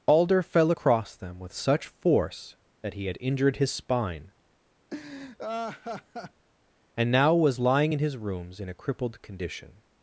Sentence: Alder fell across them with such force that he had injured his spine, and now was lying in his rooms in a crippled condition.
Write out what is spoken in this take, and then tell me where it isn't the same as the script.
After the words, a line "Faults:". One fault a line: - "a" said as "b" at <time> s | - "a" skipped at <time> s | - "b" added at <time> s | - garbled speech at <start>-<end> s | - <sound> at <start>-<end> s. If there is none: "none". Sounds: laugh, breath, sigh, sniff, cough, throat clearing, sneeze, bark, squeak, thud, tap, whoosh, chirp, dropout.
Alder fell across them with such force that he had injured his spine, and now was lying in his rooms in a crippled condition.
Faults:
- laugh at 4.9-6.5 s